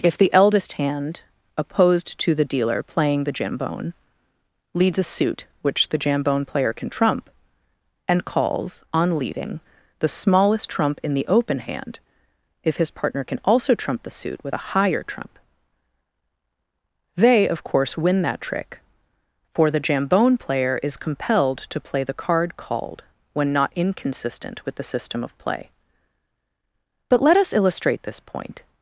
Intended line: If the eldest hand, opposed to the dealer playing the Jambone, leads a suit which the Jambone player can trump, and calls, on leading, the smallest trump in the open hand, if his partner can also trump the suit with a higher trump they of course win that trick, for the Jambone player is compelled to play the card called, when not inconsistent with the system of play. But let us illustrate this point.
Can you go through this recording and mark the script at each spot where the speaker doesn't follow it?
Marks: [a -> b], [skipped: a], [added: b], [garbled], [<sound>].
If the eldest hand, opposed to the dealer playing the Jambone, leads a suit which the Jambone player can trump, and calls, on leading, the smallest trump in the open hand, if his partner can also trump the suit with a higher trump they of course win that trick, for the Jambone player is compelled to play the card called, when not inconsistent with the system of play. But let us illustrate this point.